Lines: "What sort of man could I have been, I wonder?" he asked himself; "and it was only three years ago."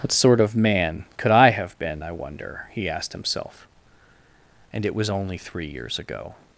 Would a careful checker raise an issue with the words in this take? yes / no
no